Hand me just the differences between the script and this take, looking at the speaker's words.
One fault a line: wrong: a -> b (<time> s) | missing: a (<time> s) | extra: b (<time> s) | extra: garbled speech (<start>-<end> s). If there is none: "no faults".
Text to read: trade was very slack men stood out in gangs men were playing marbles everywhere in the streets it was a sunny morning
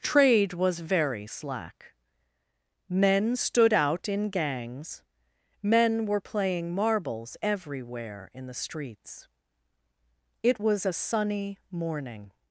no faults